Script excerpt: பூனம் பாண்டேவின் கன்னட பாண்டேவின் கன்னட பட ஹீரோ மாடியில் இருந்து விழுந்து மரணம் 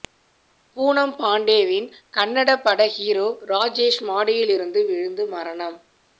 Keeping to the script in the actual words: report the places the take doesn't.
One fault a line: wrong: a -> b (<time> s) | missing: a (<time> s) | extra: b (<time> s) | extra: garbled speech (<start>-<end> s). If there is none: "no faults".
missing: பாண்டேவின் கன்னட (2.5 s)
extra: ராஜேஷ் (3.5 s)